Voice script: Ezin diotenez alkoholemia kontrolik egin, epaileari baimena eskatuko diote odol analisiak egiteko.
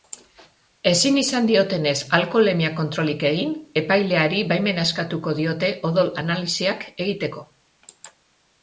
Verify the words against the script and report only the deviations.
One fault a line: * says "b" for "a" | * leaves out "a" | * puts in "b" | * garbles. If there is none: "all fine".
* puts in "izan"